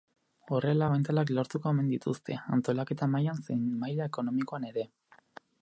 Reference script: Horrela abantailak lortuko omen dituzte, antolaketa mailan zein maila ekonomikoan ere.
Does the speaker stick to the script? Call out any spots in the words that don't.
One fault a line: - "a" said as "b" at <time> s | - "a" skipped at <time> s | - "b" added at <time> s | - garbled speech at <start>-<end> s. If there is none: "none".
none